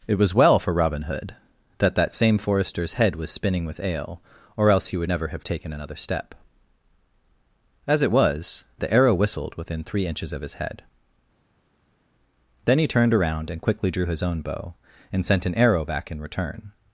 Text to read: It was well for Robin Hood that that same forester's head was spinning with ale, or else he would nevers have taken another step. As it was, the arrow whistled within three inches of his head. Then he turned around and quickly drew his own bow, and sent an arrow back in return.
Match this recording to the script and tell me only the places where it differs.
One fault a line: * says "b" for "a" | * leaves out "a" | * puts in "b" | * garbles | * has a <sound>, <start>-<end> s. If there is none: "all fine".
* says "never" for "nevers"